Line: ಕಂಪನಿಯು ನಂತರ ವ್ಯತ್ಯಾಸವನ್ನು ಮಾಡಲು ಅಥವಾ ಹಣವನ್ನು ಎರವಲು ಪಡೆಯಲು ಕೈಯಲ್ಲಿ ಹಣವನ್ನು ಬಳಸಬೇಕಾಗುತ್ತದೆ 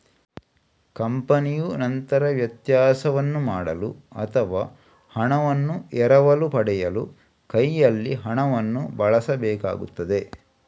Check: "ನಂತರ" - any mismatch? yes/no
no